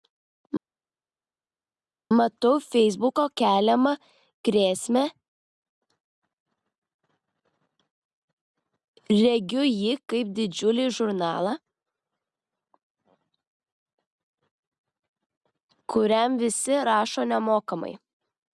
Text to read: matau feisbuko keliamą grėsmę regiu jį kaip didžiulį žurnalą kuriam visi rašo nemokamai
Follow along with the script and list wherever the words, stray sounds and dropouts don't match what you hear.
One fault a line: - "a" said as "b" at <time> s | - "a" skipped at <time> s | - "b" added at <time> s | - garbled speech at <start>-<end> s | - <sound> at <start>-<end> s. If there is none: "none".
none